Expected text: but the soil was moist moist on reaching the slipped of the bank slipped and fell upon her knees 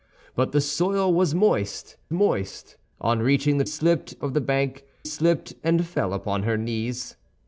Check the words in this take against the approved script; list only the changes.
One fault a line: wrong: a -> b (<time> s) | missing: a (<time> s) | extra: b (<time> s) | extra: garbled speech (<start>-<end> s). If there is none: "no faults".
no faults